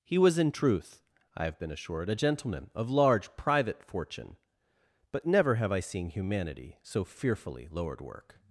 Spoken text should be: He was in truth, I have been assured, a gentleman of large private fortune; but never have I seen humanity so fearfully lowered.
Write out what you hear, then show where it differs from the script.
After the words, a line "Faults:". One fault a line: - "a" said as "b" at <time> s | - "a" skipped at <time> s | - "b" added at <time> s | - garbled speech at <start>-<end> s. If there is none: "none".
He was in truth, I have been assured, a gentleman of large private fortune; but never have I seen humanity so fearfully lowered. work
Faults:
- "work" added at 8.0 s